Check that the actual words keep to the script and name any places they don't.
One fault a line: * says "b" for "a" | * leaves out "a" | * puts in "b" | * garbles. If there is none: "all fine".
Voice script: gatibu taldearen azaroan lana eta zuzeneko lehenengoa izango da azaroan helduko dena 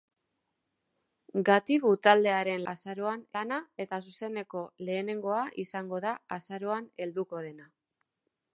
all fine